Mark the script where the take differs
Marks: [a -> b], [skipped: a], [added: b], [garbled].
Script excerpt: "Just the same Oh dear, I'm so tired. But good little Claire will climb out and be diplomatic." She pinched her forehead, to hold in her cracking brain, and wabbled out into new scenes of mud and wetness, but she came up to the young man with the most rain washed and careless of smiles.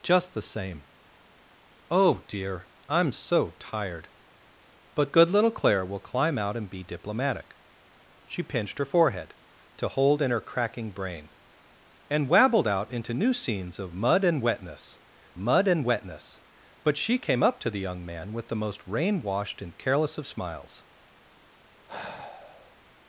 "Just the same Oh dear, I'm so tired. But good little Claire will climb out and be diplomatic." She pinched her forehead, to hold in her cracking brain, and wabbled out into new scenes of mud and wetness, [added: mud and wetness] but she came up to the young man with the most rain washed and careless of smiles.